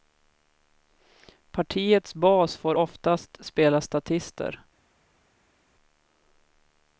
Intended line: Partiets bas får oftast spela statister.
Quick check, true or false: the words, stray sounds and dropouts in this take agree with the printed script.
true